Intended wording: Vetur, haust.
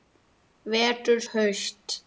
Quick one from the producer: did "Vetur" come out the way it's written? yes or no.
yes